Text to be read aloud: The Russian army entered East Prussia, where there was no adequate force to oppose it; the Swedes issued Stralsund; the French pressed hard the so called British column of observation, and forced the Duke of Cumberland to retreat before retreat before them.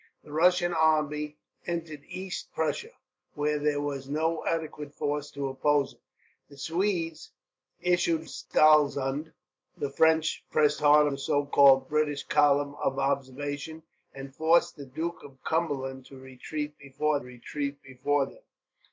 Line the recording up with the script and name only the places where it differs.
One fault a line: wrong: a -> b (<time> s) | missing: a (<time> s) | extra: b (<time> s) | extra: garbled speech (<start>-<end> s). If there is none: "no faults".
no faults